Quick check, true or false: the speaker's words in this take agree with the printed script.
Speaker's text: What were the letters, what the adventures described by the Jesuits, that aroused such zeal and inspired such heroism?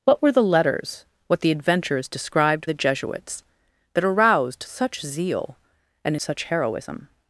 false